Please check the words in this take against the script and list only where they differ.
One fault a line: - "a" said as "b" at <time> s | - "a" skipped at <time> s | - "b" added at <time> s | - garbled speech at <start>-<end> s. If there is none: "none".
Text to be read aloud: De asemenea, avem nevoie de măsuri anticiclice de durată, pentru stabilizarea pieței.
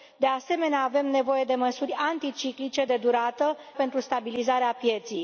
none